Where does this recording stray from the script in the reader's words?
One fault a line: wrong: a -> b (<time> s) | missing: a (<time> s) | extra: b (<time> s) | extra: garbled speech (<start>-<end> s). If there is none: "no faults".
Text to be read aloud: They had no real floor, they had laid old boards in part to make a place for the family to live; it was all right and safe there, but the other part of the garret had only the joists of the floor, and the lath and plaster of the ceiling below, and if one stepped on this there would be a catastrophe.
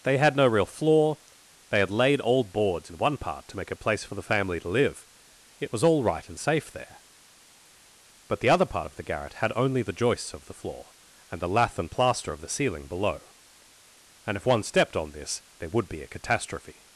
extra: one (3.0 s)